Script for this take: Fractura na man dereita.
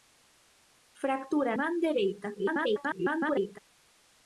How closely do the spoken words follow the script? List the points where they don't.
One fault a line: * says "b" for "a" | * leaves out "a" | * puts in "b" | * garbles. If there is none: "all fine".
* leaves out "na"
* garbles